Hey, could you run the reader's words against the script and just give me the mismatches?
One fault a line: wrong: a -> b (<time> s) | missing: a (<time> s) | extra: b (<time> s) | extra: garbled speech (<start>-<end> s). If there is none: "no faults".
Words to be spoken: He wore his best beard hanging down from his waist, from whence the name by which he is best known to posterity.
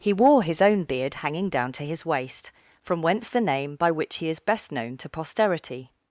wrong: best -> own (0.6 s)
wrong: from -> to (1.7 s)